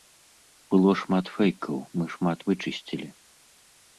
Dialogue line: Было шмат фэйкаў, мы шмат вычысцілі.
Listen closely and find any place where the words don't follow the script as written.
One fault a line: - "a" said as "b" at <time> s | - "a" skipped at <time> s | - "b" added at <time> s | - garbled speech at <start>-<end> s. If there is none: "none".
none